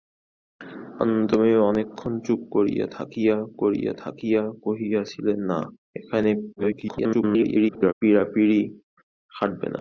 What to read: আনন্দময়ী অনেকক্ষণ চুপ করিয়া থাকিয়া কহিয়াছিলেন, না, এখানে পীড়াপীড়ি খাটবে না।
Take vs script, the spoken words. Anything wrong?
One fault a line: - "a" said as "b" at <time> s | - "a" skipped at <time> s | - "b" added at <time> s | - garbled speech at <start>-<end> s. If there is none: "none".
- "করিয়া থাকিয়া" added at 3.6 s
- garbled speech at 6.6-7.9 s